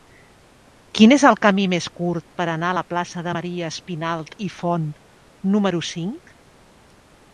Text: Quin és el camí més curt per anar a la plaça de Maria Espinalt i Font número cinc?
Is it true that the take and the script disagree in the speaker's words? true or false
false